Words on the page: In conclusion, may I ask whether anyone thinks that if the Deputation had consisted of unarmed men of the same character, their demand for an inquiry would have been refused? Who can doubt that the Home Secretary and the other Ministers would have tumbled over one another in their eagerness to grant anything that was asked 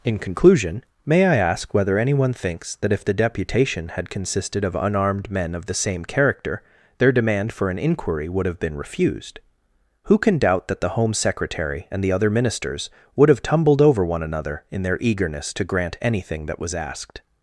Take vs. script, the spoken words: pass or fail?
pass